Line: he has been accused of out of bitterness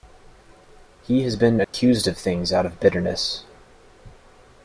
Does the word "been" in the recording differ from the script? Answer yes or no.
no